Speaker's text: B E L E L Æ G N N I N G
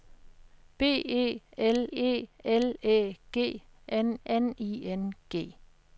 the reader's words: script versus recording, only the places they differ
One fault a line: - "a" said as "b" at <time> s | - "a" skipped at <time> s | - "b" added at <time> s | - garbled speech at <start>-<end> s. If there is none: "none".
none